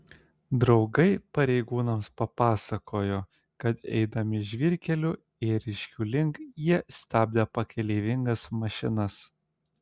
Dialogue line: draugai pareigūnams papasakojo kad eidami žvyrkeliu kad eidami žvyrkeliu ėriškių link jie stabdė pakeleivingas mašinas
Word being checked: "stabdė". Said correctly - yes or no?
yes